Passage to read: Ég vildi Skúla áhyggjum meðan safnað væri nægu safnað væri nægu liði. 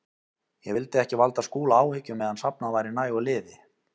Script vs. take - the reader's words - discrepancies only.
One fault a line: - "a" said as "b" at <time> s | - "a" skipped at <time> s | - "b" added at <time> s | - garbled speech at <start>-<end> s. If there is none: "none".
- "ekki valda" added at 1.0 s
- "safnað væri nægu" skipped at 3.3 s